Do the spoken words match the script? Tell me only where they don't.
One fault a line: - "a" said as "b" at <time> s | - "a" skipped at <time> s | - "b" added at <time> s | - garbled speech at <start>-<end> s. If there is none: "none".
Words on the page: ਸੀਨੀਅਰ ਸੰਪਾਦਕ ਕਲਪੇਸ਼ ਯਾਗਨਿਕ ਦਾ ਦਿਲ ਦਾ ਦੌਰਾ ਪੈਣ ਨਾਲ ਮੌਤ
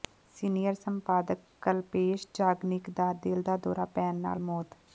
none